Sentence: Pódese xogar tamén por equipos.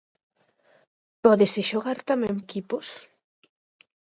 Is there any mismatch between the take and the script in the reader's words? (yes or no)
yes